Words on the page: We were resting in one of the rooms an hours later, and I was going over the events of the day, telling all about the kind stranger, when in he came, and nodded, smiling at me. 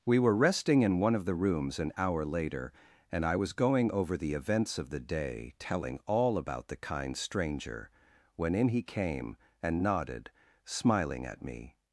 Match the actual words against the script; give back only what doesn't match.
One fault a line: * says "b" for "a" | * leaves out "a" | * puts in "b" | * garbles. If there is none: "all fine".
* says "hour" for "hours"